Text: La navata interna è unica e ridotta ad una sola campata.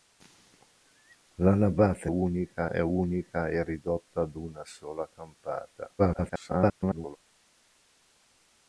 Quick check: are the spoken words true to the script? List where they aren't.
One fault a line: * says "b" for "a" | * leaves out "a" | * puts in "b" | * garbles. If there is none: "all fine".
* says "unica" for "interna"
* garbles